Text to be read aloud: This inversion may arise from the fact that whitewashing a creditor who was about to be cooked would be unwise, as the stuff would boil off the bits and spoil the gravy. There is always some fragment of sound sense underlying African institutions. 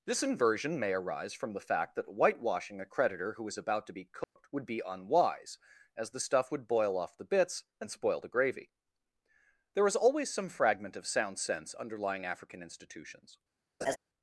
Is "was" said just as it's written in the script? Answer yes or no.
no